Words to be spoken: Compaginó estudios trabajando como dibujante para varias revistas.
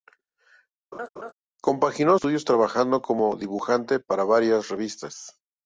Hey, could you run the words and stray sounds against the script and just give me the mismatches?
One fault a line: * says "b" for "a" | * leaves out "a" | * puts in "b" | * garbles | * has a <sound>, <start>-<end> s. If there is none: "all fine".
* has a laugh, 0.9-1.3 s